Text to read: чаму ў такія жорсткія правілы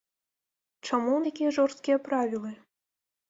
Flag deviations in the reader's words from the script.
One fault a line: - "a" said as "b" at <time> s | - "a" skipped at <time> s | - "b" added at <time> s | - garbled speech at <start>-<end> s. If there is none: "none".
none